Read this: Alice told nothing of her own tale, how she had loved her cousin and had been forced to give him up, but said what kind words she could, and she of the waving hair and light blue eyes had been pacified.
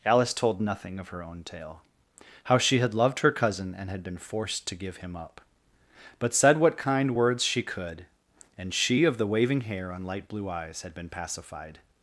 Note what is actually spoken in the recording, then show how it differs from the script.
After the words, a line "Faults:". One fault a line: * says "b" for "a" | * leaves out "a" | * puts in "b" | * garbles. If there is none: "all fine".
Alice told nothing of her own tale, how she had loved her cousin and had been forced to give him up, but said what kind words she could, and she of the waving hair and light blue eyes had been pacified.
Faults:
all fine